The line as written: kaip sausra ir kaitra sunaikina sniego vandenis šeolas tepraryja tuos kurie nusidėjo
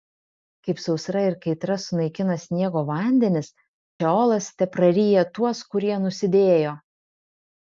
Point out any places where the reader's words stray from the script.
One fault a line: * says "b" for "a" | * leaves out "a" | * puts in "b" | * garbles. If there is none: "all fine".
all fine